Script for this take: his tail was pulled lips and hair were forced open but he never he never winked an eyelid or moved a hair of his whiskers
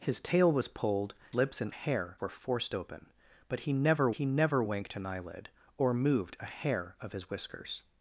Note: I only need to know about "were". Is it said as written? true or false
true